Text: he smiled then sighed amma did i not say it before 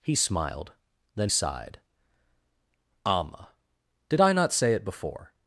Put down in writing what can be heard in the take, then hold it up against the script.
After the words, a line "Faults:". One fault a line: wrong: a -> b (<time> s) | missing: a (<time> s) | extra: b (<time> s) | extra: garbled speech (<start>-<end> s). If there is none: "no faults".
he smiled then sighed amma did i not say it before
Faults:
no faults